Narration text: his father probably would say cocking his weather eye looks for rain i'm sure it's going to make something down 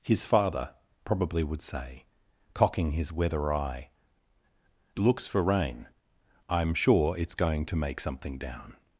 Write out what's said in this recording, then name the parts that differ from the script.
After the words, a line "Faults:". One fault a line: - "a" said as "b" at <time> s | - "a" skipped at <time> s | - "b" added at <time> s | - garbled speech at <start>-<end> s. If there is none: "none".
his father probably would say cocking his weather eye looks for rain i'm sure it's going to make something down
Faults:
none